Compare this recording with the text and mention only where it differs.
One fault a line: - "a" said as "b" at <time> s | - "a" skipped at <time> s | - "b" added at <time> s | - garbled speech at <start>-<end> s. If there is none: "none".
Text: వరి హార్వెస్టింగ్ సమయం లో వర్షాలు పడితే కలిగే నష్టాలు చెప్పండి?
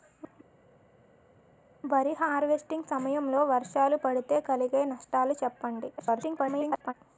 - garbled speech at 6.0-6.9 s